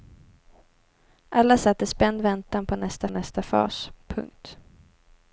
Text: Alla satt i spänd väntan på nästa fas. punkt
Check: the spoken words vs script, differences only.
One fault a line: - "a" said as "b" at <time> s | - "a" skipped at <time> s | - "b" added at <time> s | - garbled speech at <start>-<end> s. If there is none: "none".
- "nästa" added at 3.1 s